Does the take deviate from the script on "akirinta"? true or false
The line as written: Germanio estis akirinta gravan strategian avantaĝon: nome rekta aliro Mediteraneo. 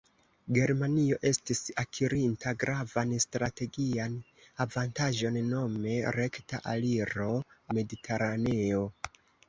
false